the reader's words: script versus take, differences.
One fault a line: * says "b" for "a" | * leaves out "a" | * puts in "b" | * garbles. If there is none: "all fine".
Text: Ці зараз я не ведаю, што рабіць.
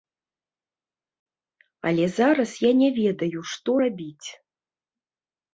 * says "Але" for "Ці"